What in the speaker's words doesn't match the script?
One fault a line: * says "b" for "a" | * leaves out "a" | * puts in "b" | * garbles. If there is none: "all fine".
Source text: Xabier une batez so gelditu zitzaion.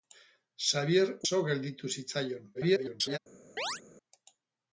* leaves out "une batez"
* garbles